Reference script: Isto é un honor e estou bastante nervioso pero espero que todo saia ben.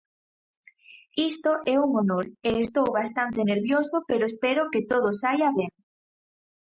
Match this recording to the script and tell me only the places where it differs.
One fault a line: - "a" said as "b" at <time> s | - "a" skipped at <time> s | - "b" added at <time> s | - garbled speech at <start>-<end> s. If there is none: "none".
none